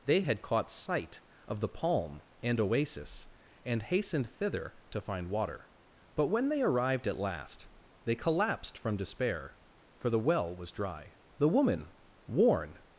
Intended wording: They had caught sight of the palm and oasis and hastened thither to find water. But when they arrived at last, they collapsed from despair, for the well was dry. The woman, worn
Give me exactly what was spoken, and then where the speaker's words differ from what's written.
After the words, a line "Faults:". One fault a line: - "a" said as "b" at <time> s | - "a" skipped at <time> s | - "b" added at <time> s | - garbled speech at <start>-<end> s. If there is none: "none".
They had caught sight of the palm and oasis and hastened thither to find water. But when they arrived at last, they collapsed from despair, for the well was dry. The woman, worn
Faults:
none